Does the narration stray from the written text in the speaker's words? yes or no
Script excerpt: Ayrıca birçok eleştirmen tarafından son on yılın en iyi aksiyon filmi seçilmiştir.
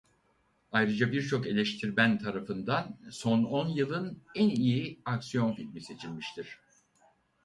no